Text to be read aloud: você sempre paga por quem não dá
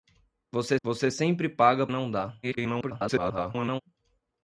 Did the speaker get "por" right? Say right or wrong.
wrong